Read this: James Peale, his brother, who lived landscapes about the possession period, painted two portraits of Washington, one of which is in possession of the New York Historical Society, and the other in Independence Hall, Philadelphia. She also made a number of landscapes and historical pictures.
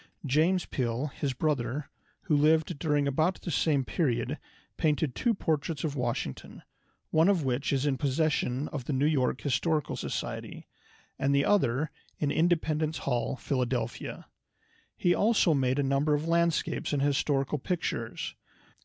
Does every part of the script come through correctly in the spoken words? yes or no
no